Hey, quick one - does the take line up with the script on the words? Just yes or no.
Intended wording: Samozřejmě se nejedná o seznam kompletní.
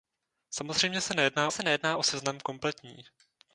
no